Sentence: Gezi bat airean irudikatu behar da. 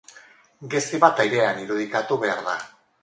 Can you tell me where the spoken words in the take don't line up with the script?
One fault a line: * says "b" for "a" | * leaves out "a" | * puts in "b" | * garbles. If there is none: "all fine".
all fine